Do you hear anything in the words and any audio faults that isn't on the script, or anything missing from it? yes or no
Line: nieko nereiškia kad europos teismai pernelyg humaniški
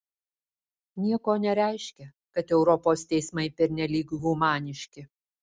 no